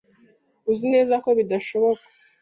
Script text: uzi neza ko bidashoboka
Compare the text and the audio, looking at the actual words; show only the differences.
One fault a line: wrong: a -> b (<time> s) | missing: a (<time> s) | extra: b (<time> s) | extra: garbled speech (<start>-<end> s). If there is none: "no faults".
no faults